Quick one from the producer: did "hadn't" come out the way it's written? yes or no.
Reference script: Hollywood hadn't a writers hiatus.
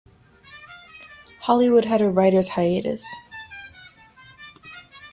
no